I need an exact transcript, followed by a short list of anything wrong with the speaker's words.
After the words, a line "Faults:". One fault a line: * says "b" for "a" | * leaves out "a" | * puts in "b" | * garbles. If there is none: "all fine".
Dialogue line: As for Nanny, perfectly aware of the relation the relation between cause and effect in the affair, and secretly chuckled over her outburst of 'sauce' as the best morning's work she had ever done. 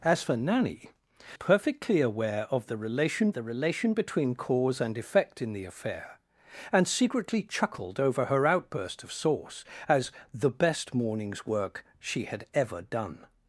As for Nanny, perfectly aware of the relation the relation between cause and effect in the affair, and secretly chuckled over her outburst of 'sauce' as the best morning's work she had ever done.
Faults:
all fine